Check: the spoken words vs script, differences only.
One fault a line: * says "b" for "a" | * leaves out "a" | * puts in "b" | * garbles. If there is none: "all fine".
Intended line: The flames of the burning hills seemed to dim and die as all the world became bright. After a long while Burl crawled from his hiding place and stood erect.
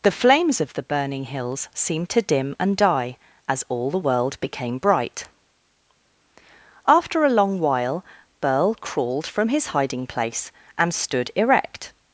all fine